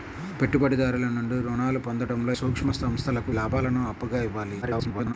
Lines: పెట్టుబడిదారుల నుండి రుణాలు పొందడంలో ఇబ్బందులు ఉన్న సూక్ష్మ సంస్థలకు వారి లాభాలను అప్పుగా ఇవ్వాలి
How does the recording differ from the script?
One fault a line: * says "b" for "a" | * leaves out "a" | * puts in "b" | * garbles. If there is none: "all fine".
* leaves out "ఇబ్బందులు ఉన్న"
* leaves out "వారి"
* garbles